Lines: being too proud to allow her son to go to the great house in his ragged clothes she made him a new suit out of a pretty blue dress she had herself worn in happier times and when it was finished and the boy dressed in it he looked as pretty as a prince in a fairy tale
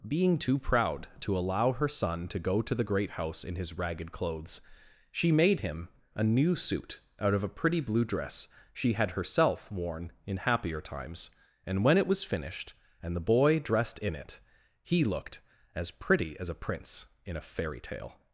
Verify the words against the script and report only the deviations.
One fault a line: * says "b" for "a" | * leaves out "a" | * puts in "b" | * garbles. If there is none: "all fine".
all fine